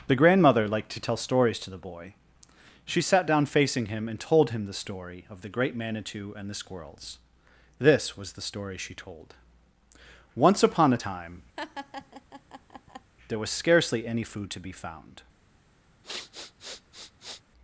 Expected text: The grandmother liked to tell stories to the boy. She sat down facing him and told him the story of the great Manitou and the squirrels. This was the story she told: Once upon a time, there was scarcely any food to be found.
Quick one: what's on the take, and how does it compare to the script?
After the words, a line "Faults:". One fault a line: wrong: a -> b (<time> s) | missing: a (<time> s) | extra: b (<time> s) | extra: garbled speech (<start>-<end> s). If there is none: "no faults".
The grandmother liked to tell stories to the boy. She sat down facing him and told him the story of the great Manitou and the squirrels. This was the story she told: Once upon a time, there was scarcely any food to be found.
Faults:
no faults